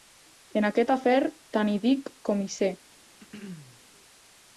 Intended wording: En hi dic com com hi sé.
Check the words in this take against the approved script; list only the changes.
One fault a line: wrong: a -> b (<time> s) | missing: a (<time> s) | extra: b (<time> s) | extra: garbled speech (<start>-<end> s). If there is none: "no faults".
extra: aquest afer tant (0.7 s)
missing: com (2.4 s)